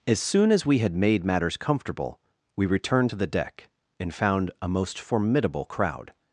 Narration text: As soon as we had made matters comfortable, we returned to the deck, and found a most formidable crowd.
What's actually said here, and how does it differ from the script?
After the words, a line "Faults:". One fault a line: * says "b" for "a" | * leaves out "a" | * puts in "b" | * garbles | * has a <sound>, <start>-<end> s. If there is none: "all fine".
As soon as we had made matters comfortable, we returned to the deck, and found a most formidable crowd.
Faults:
all fine